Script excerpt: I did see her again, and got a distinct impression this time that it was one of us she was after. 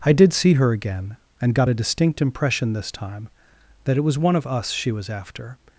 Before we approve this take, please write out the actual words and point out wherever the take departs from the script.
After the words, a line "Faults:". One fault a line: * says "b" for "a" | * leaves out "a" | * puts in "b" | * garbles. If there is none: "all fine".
I did see her again, and got a distinct impression this time that it was one of us she was after.
Faults:
all fine